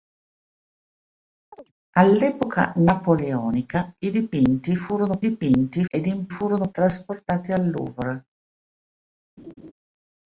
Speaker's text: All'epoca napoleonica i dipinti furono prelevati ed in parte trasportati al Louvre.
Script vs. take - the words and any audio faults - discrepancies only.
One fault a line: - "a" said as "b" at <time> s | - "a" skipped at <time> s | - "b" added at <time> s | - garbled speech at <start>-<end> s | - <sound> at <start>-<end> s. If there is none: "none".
- chirp at 1.5-1.7 s
- "prelevati" said as "dipinti" at 5.2 s
- "parte" said as "furono" at 6.3 s
- laugh at 9.4-9.7 s